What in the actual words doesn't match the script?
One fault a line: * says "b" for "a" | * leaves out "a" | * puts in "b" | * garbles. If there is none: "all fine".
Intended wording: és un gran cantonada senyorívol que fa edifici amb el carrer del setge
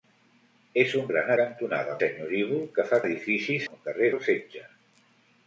all fine